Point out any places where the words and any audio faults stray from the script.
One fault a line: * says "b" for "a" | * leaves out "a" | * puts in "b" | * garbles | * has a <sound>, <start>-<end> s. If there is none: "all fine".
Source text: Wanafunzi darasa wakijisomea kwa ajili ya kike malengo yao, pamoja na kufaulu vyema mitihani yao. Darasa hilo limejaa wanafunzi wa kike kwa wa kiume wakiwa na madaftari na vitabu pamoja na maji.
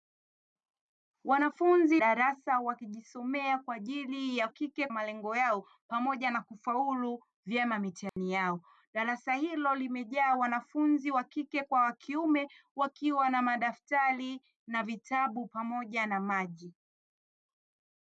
* has a dropout, 8.1-8.2 s